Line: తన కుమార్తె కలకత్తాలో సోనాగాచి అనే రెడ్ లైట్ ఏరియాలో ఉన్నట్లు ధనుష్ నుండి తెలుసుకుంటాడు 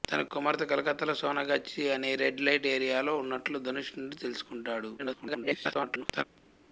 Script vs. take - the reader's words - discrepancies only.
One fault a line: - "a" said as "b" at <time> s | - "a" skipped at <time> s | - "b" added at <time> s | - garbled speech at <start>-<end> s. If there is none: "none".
- garbled speech at 5.0-6.2 s